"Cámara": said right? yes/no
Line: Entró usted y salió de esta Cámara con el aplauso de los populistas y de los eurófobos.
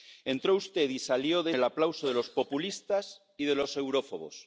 no